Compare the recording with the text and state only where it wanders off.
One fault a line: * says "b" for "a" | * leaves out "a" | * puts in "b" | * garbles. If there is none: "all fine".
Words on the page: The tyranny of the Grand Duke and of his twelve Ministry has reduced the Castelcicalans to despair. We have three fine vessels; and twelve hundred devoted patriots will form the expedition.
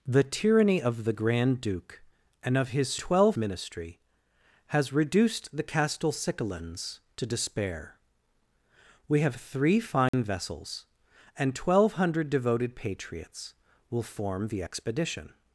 all fine